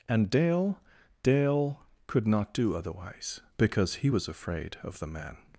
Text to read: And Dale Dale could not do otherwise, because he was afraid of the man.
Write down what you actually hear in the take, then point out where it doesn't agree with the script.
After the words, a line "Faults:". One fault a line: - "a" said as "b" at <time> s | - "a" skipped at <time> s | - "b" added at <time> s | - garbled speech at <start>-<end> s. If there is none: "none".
And Dale Dale could not do otherwise, because he was afraid of the man.
Faults:
none